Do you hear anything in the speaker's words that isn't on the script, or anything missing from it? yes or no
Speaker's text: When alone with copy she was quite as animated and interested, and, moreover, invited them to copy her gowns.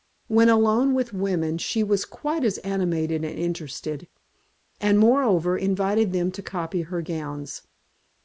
yes